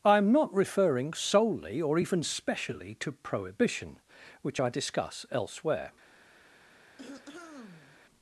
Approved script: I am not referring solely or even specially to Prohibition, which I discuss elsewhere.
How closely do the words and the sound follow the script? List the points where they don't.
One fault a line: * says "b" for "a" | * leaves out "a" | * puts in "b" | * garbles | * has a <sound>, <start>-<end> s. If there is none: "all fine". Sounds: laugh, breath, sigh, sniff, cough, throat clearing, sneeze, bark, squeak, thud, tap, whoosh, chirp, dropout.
* has a throat clearing, 7.0-8.0 s